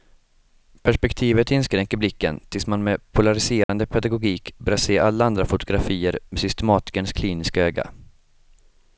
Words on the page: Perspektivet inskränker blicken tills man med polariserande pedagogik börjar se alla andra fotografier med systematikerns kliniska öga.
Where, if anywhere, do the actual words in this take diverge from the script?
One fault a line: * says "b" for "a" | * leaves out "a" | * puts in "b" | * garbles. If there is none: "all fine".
all fine